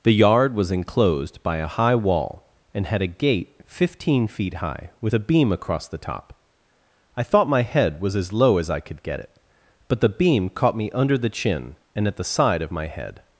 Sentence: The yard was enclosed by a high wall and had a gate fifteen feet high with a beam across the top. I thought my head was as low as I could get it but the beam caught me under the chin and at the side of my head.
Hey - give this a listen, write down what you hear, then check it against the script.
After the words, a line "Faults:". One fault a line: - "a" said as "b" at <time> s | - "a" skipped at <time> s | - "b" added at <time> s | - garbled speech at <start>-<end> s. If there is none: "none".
The yard was enclosed by a high wall and had a gate fifteen feet high with a beam across the top. I thought my head was as low as I could get it but the beam caught me under the chin and at the side of my head.
Faults:
none